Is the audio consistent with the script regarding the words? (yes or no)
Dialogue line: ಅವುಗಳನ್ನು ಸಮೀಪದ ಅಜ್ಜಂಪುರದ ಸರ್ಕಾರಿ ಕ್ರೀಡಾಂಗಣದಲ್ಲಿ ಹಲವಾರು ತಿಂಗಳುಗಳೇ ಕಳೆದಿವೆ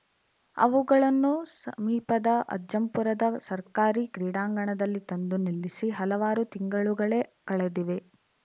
no